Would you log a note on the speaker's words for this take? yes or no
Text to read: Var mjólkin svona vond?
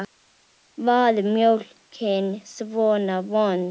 no